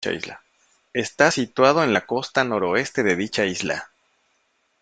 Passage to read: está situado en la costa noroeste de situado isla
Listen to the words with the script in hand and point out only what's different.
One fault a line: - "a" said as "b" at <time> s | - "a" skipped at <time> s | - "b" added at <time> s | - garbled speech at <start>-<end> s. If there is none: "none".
- "situado" said as "dicha" at 3.2 s